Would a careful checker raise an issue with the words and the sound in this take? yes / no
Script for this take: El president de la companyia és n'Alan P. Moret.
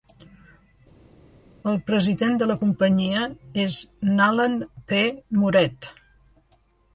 no